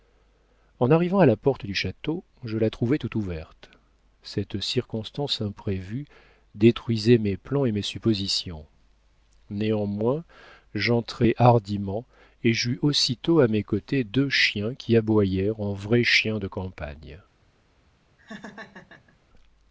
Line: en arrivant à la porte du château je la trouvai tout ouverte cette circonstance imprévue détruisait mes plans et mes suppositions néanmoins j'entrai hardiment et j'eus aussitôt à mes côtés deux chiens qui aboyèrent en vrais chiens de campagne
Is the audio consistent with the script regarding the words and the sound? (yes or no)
no